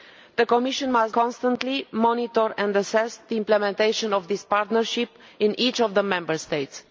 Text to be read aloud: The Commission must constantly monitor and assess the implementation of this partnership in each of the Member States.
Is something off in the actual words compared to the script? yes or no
no